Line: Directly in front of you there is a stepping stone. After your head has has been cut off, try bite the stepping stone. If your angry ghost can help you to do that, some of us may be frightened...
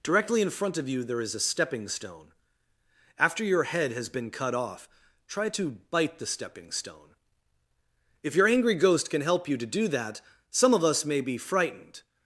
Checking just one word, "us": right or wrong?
right